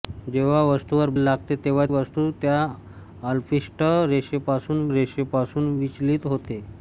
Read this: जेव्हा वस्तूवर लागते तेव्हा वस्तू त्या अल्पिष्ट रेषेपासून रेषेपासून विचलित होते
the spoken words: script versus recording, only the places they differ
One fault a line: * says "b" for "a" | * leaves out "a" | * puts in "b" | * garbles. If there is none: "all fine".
all fine